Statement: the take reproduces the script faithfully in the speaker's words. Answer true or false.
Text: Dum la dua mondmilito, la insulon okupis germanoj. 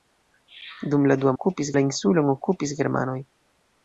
false